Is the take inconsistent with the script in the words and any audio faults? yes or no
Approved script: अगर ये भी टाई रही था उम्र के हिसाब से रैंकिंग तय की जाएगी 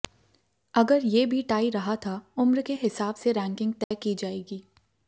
yes